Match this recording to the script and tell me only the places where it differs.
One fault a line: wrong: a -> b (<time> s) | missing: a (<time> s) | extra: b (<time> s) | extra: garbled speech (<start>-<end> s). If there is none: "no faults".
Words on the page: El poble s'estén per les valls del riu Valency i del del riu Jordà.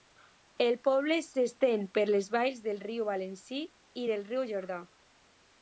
missing: del (4.2 s)